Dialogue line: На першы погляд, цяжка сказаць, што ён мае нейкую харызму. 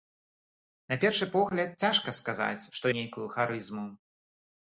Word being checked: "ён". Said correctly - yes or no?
no